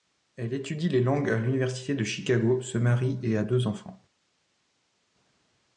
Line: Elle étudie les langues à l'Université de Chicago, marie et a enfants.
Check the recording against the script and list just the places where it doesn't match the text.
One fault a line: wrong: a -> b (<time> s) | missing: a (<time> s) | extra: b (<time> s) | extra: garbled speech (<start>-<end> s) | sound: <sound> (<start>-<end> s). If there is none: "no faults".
extra: se (2.6 s)
extra: deux (3.4 s)